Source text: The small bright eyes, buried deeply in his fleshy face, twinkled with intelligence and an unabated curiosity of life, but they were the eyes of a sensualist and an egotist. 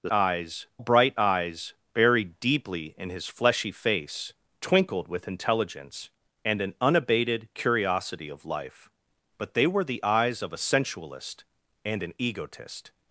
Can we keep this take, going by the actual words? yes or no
no